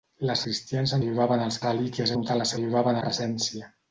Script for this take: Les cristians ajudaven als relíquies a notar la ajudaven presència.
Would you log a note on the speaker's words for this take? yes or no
no